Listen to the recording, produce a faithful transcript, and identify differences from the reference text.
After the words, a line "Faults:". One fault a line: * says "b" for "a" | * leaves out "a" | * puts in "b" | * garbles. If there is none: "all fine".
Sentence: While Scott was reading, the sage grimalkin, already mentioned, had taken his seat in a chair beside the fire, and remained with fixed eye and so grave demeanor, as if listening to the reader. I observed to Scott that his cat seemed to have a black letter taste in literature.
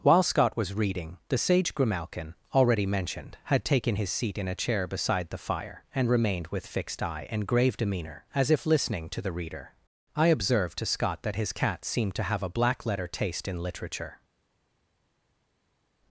While Scott was reading, the sage grimalkin, already mentioned, had taken his seat in a chair beside the fire, and remained with fixed eye and grave demeanor, as if listening to the reader. I observed to Scott that his cat seemed to have a black letter taste in literature.
Faults:
* leaves out "so"